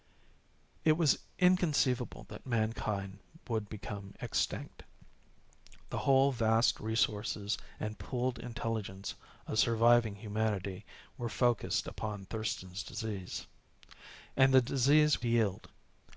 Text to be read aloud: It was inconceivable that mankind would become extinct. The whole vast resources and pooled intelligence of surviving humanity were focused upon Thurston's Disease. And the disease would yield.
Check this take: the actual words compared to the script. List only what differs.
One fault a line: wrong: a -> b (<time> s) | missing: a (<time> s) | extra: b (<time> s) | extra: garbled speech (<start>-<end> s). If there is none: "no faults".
missing: would (15.2 s)